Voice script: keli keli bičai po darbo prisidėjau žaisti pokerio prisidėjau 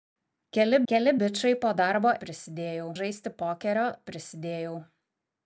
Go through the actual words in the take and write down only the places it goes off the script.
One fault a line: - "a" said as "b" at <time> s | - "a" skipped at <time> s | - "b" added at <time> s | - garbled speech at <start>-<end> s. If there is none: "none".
none